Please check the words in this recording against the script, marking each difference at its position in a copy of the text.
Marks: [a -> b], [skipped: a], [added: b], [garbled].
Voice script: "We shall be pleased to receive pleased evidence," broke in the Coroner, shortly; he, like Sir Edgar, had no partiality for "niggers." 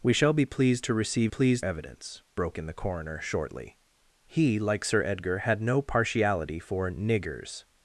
"We shall be pleased to receive pleased evidence," broke in the Coroner, shortly; he, like Sir Edgar, had no partiality for "niggers."